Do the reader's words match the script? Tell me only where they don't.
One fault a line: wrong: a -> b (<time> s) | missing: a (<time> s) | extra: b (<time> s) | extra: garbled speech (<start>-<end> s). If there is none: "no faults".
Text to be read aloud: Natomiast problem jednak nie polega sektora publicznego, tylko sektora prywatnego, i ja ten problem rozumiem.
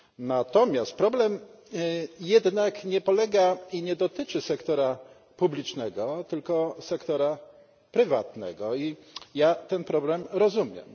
extra: i nie dotyczy (3.7 s)